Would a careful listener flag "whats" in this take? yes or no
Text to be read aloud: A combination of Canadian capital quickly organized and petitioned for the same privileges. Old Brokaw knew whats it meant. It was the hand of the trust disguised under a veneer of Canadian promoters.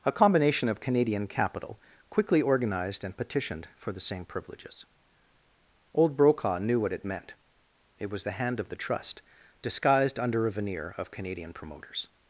yes